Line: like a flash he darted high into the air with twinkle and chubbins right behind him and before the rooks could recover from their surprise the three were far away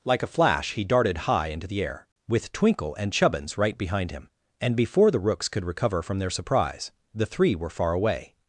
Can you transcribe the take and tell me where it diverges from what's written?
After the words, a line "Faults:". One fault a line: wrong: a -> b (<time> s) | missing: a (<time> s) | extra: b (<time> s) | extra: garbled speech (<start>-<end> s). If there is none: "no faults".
like a flash he darted high into the air with twinkle and chubbins right behind him and before the rooks could recover from their surprise the three were far away
Faults:
no faults